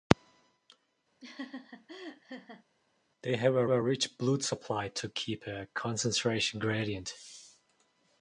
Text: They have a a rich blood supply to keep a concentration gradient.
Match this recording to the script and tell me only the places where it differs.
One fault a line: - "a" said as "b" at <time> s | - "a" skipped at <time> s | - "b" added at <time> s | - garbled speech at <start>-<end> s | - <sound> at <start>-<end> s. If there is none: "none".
- laugh at 1.2-2.6 s